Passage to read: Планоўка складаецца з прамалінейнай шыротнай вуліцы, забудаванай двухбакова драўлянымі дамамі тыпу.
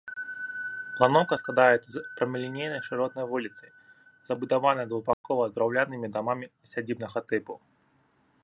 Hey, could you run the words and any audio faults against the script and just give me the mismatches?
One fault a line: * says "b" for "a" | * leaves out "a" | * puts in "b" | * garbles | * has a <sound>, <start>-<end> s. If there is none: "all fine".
* has a dropout, 5.1-5.2 s
* puts in "сядзібнага"